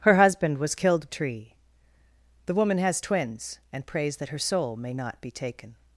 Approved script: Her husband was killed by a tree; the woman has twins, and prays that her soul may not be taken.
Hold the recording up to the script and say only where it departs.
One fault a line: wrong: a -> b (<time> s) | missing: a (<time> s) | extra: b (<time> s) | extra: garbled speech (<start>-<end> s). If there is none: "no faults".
missing: by a (1.1 s)